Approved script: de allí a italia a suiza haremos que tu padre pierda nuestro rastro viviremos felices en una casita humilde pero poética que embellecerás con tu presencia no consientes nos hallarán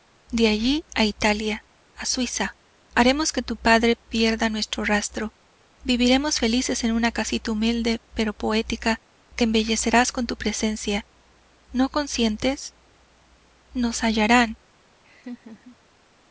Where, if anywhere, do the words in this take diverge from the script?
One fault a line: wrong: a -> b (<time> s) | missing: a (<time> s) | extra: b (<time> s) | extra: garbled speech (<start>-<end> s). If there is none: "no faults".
no faults